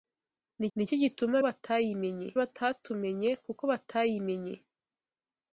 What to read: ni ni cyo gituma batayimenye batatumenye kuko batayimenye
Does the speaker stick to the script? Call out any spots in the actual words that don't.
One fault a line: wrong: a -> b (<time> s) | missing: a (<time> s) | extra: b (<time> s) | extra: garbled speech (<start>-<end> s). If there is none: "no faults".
no faults